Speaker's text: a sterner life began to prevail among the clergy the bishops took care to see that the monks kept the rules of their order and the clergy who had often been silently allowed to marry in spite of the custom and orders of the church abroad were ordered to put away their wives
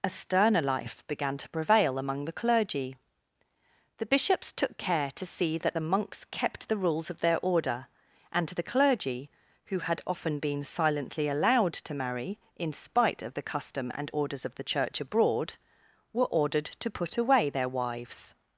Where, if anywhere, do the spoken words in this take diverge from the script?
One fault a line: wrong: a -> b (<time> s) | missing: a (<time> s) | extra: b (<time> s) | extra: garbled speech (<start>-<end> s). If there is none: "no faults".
no faults